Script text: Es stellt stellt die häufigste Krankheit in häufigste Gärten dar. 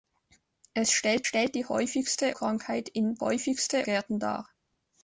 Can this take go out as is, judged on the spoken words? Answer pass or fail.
pass